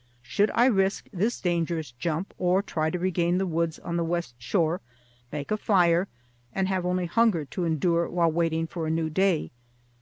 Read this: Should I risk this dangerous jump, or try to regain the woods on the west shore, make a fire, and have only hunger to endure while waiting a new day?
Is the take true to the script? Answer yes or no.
no